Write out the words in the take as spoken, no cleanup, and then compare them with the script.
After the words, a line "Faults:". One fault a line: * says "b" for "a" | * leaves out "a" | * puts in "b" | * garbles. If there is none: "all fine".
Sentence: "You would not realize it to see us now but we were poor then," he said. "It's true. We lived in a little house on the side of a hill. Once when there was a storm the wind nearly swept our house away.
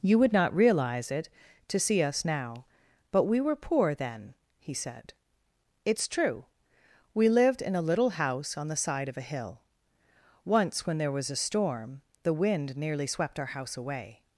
"You would not realize it to see us now but we were poor then," he said. "It's true. We lived in a little house on the side of a hill. Once when there was a storm the wind nearly swept our house away.
Faults:
all fine